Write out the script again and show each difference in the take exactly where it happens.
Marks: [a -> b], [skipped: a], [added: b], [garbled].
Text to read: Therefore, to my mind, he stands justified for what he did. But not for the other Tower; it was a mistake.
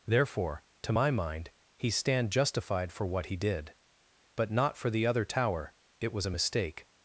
Therefore, to my mind, he [stands -> stand] justified for what he did. But not for the other Tower; it was a mistake.